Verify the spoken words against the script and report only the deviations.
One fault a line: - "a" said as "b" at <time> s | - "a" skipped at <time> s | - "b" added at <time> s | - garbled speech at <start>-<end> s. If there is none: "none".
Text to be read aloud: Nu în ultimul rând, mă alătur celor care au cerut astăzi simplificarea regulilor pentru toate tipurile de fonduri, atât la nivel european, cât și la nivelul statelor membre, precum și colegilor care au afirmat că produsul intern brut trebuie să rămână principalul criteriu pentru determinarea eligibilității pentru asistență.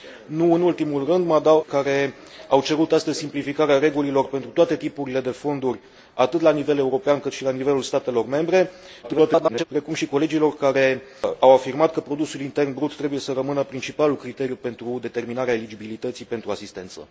- "alătur celor" skipped at 1.6 s
- garbled speech at 9.0-9.6 s